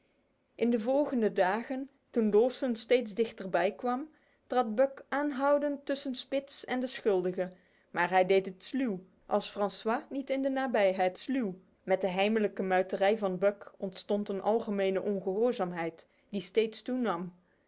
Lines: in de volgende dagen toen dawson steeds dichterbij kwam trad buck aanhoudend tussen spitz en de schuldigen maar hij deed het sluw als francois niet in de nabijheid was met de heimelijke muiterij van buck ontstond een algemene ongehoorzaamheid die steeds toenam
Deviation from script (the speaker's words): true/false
true